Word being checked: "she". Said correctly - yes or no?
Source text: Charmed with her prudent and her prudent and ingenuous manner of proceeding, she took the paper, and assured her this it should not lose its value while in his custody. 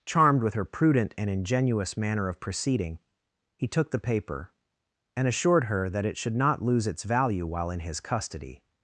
no